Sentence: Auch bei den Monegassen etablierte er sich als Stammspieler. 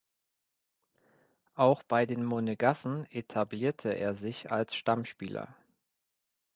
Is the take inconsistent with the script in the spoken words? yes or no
no